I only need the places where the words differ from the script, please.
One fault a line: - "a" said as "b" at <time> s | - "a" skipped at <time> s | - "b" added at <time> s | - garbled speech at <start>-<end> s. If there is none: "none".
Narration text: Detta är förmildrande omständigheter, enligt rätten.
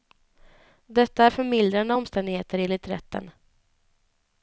none